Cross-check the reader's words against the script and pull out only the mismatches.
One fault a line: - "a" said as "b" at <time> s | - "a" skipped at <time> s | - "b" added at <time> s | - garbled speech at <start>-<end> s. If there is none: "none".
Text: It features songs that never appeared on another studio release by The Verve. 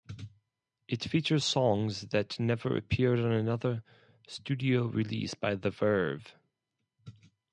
none